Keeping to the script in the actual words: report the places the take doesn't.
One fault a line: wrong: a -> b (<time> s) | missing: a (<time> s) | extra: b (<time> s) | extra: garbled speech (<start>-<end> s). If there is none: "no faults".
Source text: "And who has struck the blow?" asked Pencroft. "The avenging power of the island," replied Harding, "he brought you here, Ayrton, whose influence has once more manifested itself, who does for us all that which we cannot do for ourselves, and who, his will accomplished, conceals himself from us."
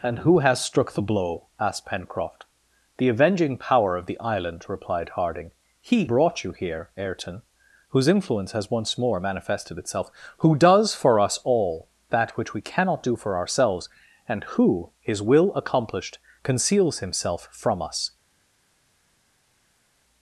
no faults